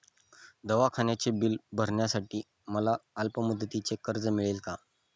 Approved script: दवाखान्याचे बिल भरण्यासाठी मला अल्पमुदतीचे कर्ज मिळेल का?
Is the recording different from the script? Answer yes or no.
no